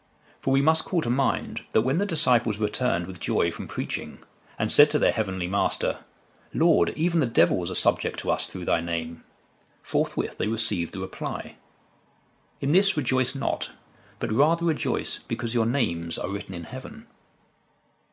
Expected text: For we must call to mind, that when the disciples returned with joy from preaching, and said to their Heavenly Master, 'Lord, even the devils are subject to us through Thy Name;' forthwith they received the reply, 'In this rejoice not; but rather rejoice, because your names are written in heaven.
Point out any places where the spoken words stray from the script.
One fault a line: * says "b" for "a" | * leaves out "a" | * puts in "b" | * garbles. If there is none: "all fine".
all fine